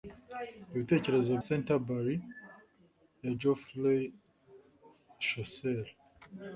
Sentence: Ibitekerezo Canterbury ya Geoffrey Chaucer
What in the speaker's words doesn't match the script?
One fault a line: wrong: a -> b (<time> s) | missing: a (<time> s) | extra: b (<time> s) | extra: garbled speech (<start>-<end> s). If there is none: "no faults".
no faults